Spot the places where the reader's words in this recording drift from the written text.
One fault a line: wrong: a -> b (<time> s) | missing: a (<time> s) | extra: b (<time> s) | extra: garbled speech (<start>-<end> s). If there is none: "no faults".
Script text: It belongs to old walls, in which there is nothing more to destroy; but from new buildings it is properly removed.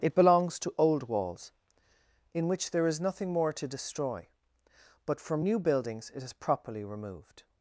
no faults